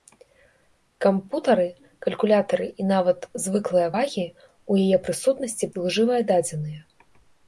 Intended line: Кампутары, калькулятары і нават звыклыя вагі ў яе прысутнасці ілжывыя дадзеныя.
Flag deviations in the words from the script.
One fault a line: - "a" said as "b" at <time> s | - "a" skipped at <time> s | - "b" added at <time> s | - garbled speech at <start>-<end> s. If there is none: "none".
none